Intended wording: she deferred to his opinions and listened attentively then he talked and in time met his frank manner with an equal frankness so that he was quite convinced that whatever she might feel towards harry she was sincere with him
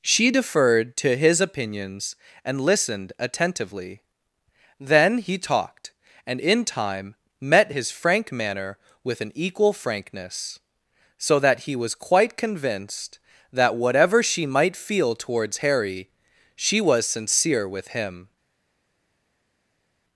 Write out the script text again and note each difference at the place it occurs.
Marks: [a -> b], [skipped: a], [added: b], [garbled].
she deferred to his opinions and listened attentively then he talked and in time met his frank manner with an equal frankness so that he was quite convinced that whatever she might feel towards harry she was sincere with him